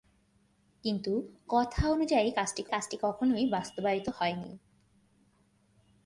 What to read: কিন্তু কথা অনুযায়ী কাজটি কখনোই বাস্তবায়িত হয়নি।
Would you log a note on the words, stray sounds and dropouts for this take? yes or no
yes